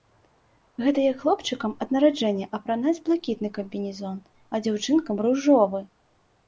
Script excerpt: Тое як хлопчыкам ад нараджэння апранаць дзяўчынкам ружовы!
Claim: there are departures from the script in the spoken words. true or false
true